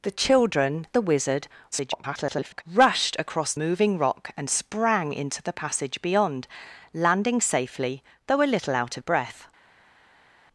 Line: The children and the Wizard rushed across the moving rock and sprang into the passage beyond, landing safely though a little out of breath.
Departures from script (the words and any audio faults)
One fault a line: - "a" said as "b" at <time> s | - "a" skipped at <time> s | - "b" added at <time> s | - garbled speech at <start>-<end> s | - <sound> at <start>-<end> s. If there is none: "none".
- "and" skipped at 0.9 s
- garbled speech at 1.7-2.6 s
- "the" skipped at 3.5 s